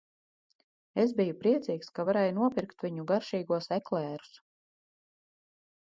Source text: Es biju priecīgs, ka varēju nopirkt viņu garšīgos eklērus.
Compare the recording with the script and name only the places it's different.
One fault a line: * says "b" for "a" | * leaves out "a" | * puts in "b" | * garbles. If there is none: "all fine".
all fine